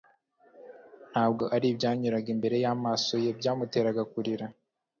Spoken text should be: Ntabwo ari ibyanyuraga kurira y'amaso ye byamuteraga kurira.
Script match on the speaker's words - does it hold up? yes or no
no